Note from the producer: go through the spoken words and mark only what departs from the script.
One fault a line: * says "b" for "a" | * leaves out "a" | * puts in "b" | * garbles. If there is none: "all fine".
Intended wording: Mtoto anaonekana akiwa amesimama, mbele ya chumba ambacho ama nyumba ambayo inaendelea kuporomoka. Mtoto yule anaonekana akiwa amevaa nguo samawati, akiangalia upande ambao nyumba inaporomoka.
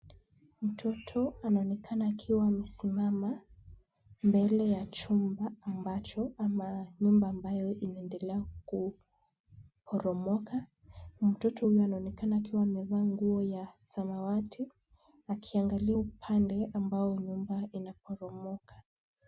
* says "huyu" for "yule"
* puts in "ya"